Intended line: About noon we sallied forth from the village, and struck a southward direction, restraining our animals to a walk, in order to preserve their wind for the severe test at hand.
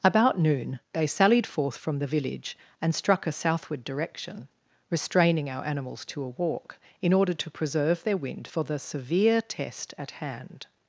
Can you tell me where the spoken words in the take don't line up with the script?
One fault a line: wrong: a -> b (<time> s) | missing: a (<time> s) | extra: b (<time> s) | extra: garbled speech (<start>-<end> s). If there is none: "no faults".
wrong: we -> they (0.9 s)